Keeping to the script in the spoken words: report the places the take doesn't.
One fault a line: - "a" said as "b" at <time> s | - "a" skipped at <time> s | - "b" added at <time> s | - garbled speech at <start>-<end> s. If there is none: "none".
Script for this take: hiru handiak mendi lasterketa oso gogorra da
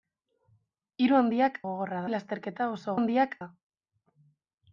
- "mendi" said as "gogorra" at 1.7 s
- "gogorra" said as "handiak" at 2.9 s